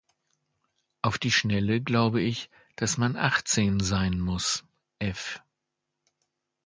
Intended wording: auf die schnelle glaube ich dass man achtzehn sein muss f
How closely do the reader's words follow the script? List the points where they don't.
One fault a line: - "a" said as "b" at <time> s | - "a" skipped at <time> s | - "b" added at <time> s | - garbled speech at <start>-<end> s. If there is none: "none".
none